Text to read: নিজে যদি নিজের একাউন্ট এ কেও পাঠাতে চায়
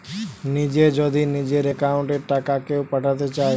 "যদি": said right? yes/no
yes